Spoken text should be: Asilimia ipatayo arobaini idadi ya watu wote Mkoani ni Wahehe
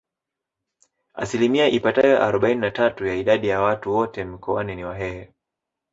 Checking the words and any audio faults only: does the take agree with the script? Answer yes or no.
no